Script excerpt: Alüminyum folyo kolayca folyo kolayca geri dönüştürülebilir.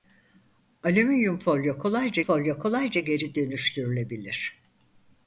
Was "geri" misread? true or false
false